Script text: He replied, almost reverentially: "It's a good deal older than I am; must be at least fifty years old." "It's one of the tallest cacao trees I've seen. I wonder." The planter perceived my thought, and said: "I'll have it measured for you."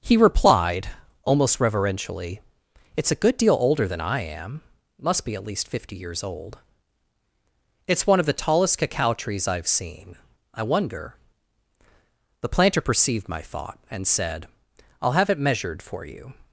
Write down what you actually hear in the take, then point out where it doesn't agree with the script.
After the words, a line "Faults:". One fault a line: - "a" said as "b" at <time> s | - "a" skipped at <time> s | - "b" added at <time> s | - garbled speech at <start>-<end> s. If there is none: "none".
He replied, almost reverentially: "It's a good deal older than I am; must be at least fifty years old." "It's one of the tallest cacao trees I've seen. I wonder." The planter perceived my thought, and said: "I'll have it measured for you."
Faults:
none